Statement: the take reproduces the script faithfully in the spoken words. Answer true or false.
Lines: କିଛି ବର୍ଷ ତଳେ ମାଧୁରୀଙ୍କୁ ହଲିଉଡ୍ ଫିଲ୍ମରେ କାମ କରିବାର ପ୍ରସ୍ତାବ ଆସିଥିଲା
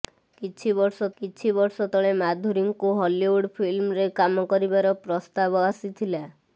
false